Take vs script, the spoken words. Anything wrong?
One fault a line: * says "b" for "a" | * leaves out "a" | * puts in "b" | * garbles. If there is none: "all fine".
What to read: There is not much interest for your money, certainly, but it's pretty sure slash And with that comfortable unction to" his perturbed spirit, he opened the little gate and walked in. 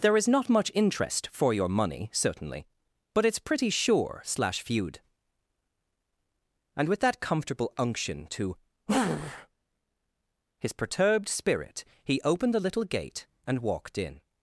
* puts in "feud"